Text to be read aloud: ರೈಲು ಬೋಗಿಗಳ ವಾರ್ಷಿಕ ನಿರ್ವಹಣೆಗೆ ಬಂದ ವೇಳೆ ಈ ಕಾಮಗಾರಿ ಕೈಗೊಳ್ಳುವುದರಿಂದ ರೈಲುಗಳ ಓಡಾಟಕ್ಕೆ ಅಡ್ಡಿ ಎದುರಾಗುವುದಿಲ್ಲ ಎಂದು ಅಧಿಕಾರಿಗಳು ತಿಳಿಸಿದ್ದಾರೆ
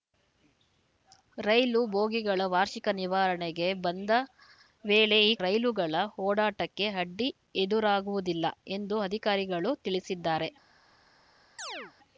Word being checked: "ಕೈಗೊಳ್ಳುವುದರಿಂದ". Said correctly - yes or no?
no